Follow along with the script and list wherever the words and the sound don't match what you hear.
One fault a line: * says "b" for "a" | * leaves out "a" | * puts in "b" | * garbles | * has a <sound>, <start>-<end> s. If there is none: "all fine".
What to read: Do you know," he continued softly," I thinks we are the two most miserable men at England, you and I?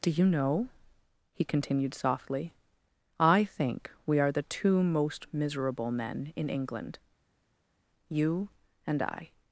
* says "think" for "thinks"
* says "in" for "at"